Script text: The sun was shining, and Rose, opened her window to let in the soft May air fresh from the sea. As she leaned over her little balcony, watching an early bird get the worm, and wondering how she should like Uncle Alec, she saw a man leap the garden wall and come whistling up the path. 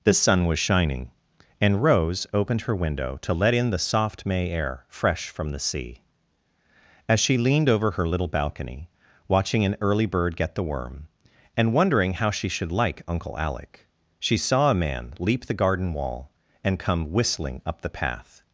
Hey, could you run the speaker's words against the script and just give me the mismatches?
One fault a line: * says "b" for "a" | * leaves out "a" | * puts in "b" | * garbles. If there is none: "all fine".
all fine